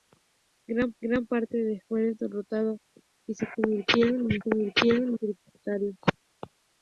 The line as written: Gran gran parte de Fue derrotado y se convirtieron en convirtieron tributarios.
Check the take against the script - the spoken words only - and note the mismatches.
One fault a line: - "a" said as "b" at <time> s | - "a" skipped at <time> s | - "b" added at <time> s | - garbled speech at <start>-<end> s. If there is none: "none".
none